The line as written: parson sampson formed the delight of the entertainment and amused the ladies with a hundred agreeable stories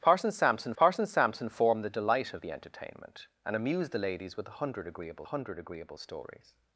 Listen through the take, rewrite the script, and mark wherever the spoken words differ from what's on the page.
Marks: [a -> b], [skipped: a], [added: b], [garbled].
parson sampson [added: parson sampson] formed the delight of the entertainment and amused the ladies with a hundred agreeable [added: hundred agreeable] stories